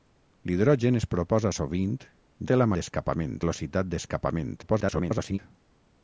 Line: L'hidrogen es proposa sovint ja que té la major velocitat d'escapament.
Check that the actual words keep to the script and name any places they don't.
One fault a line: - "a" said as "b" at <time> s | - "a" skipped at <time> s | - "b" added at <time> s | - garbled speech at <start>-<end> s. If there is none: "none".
- "ja que" skipped at 1.9 s
- "major" said as "d'escapament" at 2.8 s
- garbled speech at 4.6-5.4 s